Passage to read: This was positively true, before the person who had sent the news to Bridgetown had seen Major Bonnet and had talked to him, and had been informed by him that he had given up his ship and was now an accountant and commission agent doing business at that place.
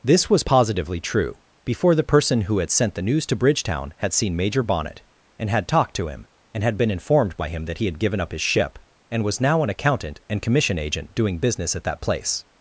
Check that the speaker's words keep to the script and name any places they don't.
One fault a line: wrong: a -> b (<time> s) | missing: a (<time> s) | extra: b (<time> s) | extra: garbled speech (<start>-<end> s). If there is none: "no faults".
no faults